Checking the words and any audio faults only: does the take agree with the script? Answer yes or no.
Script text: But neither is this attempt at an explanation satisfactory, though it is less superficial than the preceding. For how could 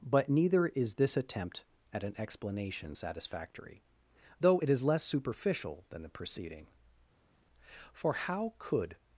yes